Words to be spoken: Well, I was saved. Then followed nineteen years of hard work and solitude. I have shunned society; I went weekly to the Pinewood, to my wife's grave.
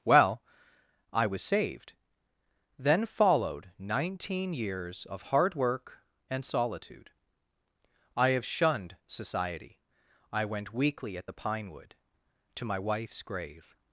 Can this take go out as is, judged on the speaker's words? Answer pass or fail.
fail